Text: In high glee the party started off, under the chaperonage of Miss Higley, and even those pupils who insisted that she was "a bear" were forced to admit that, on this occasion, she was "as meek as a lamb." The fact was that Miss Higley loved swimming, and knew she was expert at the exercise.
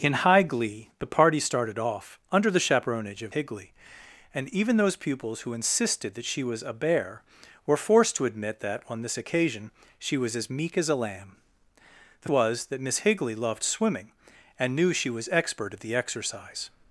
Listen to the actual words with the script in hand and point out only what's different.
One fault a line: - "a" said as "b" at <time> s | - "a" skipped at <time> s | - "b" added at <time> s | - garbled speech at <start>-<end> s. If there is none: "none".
- "Miss" skipped at 3.4 s
- "fact" skipped at 12.3 s